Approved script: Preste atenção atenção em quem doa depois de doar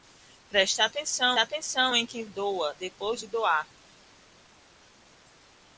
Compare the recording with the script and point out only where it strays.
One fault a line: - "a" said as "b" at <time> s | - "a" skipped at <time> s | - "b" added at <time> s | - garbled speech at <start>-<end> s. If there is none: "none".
none